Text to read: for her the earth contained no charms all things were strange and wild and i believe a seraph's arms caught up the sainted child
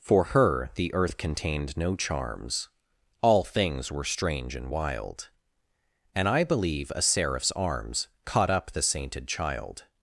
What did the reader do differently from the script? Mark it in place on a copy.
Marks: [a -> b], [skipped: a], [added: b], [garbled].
for her the earth contained no charms all things were strange and wild and i believe a seraph's arms caught up the sainted child